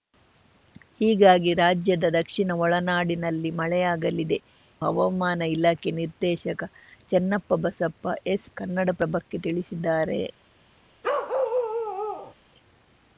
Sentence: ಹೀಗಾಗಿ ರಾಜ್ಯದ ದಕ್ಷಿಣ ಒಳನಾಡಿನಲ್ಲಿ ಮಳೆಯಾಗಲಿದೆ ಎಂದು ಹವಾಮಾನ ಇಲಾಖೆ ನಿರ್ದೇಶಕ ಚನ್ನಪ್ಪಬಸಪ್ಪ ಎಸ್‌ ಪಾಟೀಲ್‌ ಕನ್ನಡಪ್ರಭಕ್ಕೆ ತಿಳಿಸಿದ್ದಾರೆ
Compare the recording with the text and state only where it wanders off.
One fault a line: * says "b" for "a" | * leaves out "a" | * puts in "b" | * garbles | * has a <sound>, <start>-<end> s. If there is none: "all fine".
* leaves out "ಎಂದು"
* leaves out "ಪಾಟೀಲ್"
* has a bark, 11.0-12.3 s